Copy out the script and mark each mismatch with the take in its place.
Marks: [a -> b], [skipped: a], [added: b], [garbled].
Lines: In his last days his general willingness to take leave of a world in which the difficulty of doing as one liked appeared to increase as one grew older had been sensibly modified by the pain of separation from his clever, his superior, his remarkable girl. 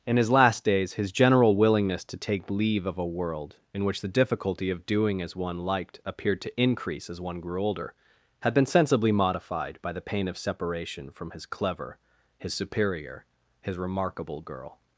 In his last days his general willingness to take leave of a world in which the difficulty of doing as one liked appeared to increase as one grew older had been sensibly modified by the pain of separation from his clever, his superior, his remarkable girl.